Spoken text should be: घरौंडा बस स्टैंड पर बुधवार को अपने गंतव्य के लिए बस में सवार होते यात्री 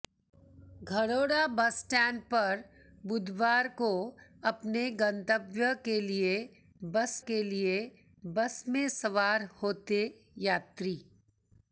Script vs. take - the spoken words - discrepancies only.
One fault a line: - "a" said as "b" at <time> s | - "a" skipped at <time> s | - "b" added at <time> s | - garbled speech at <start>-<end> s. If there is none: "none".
- "के लिए बस" added at 7.3 s